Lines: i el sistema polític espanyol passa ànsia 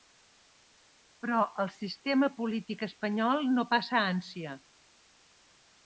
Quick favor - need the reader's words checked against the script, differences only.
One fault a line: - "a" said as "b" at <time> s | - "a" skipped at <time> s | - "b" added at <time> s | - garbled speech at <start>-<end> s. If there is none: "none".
- "i" said as "però" at 1.2 s
- "no" added at 3.6 s